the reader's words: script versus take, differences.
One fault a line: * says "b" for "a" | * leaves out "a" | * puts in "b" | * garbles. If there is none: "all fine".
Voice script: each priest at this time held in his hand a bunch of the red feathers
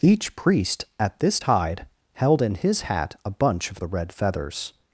* says "tide" for "time"
* says "hat" for "hand"